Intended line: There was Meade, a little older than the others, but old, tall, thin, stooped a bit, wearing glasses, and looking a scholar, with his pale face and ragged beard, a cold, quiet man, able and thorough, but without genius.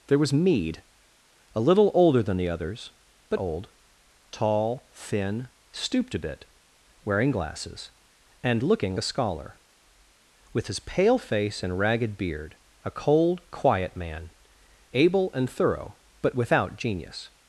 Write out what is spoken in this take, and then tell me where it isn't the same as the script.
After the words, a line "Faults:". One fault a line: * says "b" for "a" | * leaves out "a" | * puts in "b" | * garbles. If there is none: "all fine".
There was Meade, a little older than the others, but old, tall, thin, stooped a bit, wearing glasses, and looking a scholar, with his pale face and ragged beard, a cold, quiet man, able and thorough, but without genius.
Faults:
all fine